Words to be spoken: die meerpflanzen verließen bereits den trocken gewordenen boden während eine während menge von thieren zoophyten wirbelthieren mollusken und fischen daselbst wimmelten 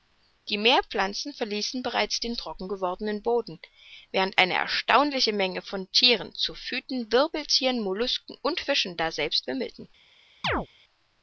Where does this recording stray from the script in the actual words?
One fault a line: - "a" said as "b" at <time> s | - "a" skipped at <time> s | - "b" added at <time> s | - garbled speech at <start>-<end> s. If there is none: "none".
- "während" said as "erstaunliche" at 4.5 s